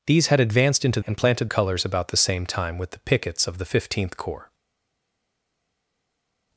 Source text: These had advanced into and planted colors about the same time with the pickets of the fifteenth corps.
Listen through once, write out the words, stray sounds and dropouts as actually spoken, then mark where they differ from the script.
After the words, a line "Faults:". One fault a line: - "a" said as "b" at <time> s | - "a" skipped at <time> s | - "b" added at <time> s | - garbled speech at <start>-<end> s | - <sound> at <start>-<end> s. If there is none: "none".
These had advanced into and planted colors about the same time with the pickets of the fifteenth corps.
Faults:
none